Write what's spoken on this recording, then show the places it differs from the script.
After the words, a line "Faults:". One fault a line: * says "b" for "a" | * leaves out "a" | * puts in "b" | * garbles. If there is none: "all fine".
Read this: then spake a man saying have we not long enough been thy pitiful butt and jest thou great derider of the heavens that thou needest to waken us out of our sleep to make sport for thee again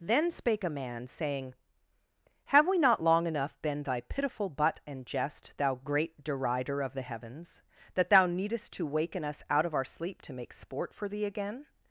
then spake a man saying have we not long enough been thy pitiful butt and jest thou great derider of the heavens that thou needest to waken us out of our sleep to make sport for thee again
Faults:
all fine